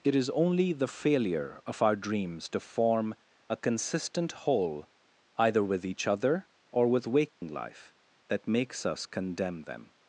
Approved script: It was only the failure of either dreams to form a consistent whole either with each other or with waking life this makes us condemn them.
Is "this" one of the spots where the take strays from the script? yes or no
yes